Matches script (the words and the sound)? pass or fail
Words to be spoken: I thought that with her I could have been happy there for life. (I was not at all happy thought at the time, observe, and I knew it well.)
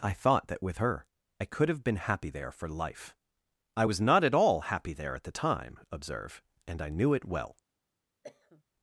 fail